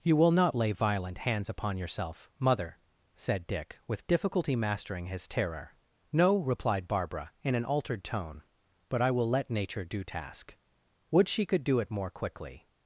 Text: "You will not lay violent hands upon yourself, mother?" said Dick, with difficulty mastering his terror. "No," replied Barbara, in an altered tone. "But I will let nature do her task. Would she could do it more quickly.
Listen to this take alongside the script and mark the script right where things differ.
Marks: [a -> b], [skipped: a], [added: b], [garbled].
"You will not lay violent hands upon yourself, mother?" said Dick, with difficulty mastering his terror. "No," replied Barbara, in an altered tone. "But I will let nature do [skipped: her] task. Would she could do it more quickly.